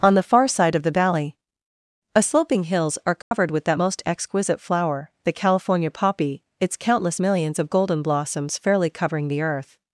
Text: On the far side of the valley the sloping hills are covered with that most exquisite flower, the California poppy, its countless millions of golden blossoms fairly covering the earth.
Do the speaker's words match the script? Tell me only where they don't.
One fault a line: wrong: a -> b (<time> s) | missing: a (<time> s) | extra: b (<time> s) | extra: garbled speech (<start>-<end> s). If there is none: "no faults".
wrong: the -> a (2.1 s)